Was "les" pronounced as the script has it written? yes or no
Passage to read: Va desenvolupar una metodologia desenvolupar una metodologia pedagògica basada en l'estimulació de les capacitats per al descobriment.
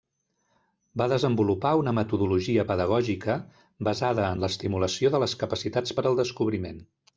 yes